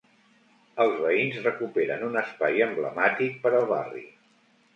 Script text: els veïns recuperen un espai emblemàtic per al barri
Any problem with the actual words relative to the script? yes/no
no